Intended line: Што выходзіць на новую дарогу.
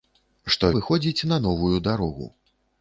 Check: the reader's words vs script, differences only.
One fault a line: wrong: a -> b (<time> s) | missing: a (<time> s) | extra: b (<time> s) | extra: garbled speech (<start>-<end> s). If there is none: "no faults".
no faults